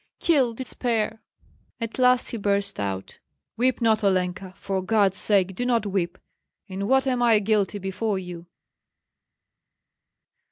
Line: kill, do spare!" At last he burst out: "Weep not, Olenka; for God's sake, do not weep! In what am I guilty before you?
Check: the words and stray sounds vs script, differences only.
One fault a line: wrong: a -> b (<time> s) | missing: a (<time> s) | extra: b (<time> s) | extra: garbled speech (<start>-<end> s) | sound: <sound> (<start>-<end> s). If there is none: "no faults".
no faults